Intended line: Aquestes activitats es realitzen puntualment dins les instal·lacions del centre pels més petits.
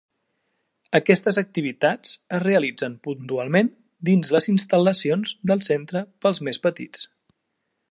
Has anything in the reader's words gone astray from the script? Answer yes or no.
no